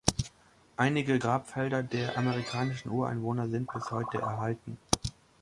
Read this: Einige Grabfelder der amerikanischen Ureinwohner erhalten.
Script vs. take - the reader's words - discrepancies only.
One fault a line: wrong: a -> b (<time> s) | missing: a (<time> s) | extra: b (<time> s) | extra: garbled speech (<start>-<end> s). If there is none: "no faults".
extra: sind bis heute (3.5 s)